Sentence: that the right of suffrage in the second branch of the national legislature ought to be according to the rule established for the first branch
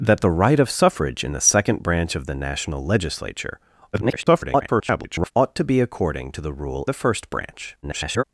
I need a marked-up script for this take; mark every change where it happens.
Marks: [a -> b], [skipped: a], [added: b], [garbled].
that the right of suffrage in the second branch of the national legislature [garbled] ought to be according to the rule [skipped: established for] the first branch [garbled]